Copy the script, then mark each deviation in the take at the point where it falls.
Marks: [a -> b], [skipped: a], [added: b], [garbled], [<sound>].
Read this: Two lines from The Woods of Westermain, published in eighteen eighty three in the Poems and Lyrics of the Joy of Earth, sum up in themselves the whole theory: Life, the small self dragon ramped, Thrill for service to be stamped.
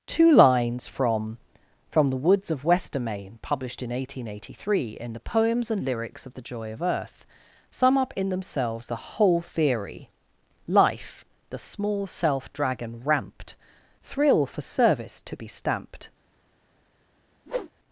Two lines from [added: from] The Woods of Westermain, published in eighteen eighty three in the Poems and Lyrics of the Joy of Earth, sum up in themselves the whole theory: Life, the small self dragon ramped, Thrill for service to be stamped. [whoosh]